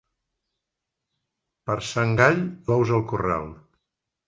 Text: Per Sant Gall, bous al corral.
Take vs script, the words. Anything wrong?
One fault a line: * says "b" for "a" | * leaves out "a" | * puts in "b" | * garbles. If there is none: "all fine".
all fine